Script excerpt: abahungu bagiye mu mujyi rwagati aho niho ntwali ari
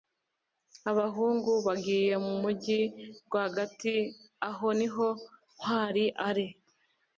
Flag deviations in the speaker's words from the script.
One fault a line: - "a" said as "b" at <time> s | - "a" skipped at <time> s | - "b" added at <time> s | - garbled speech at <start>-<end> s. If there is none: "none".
none